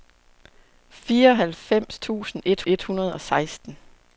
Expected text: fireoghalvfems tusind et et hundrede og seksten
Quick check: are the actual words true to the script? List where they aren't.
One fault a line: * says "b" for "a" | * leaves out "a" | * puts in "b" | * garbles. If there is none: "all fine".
all fine